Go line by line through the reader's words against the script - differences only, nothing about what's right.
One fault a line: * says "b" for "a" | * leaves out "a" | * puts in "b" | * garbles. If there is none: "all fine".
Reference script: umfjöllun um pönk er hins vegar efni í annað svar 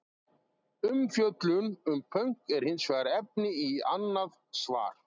all fine